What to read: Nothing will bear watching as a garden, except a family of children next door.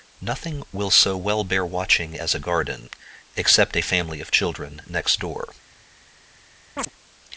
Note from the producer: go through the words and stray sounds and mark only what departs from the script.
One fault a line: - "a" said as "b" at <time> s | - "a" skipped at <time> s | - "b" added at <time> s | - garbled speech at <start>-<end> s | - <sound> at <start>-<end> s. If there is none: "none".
- "so well" added at 0.9 s
- chirp at 6.8-6.9 s